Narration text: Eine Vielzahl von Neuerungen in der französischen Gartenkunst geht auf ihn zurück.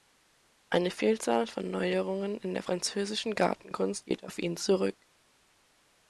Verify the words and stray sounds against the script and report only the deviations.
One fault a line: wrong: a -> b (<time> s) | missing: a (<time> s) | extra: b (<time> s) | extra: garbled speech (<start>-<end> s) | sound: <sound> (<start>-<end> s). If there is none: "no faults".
no faults